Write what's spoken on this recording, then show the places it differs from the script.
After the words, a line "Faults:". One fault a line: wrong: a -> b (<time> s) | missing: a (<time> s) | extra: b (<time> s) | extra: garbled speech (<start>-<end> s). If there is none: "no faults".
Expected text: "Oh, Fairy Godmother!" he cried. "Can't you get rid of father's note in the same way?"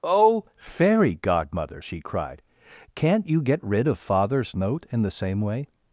"Oh, Fairy Godmother!" she cried. "Can't you get rid of father's note in the same way?"
Faults:
wrong: he -> she (1.8 s)